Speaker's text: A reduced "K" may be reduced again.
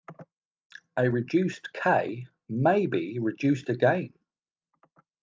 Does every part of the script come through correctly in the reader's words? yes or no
yes